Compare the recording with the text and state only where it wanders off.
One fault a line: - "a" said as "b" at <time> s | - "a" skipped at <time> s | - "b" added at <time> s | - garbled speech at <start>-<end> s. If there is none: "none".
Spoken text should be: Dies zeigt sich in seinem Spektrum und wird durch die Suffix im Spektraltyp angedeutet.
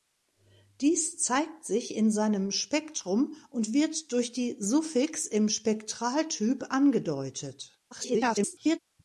- garbled speech at 7.9-8.8 s